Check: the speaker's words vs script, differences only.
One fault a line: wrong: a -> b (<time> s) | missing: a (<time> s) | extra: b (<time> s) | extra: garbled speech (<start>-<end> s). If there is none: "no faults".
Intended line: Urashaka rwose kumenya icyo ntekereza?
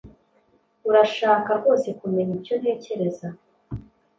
no faults